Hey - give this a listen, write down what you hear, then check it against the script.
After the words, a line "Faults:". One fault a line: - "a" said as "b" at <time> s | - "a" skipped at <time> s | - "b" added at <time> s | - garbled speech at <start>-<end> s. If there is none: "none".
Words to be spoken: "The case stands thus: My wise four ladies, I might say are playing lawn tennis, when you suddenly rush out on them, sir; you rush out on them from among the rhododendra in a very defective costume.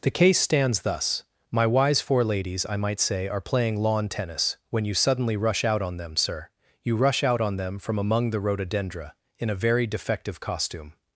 "The case stands thus: My wise four ladies, I might say are playing lawn tennis, when you suddenly rush out on them, sir; you rush out on them from among the rhododendra in a very defective costume.
Faults:
none